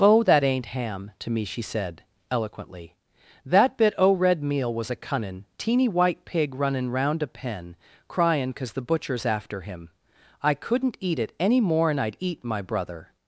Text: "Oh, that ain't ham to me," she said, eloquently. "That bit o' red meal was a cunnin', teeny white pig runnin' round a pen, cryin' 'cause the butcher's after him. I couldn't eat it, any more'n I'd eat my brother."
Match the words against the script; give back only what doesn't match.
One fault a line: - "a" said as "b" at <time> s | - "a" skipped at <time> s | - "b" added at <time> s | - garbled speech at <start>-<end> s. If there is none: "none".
none